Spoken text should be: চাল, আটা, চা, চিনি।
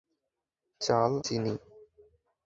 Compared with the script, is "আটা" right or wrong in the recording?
wrong